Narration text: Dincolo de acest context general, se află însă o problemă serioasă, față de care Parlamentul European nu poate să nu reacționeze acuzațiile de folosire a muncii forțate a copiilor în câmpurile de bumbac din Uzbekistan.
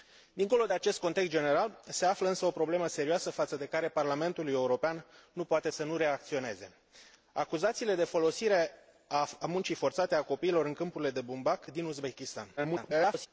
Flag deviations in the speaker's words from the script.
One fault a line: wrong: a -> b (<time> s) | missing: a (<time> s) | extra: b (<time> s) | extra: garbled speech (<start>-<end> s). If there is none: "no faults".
extra: garbled speech (12.6-13.3 s)